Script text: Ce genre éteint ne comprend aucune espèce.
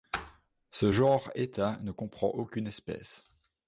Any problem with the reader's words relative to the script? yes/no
no